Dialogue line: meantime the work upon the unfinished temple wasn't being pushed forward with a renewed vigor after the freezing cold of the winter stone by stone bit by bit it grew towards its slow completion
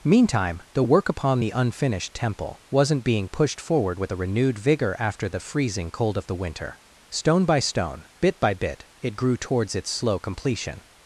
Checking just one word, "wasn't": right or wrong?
right